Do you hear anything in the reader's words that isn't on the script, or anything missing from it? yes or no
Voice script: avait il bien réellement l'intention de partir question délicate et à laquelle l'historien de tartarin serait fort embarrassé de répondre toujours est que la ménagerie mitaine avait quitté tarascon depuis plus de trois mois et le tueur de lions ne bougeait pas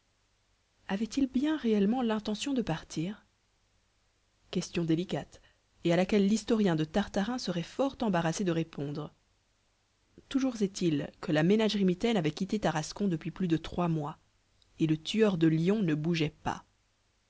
yes